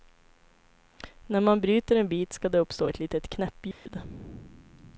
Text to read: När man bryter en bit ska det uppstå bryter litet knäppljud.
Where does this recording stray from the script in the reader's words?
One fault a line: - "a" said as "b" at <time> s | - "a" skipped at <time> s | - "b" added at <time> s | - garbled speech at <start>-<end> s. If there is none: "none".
- "bryter" said as "ett" at 2.9 s